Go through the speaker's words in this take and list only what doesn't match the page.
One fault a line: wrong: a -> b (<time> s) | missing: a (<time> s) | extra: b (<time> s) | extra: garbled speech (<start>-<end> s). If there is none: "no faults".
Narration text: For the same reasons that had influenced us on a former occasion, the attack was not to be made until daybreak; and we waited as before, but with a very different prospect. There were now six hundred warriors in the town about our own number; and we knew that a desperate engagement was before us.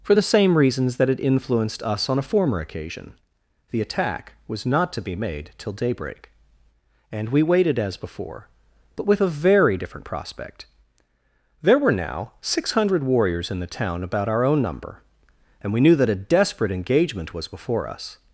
wrong: until -> till (5.6 s)